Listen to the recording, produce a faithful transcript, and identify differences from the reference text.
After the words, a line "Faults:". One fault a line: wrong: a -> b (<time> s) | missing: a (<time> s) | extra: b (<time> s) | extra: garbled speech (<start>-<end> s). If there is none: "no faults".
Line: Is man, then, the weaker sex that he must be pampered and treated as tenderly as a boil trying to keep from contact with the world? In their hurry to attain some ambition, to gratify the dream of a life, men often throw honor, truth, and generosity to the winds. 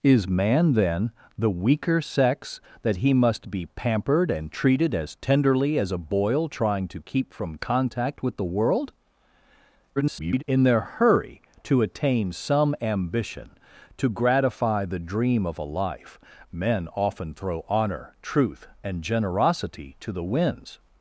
Is man, then, the weaker sex that he must be pampered and treated as tenderly as a boil trying to keep from contact with the world? [garbled] In their hurry to attain some ambition, to gratify the dream of a life, men often throw honor, truth, and generosity to the winds.
Faults:
extra: garbled speech (10.0-10.4 s)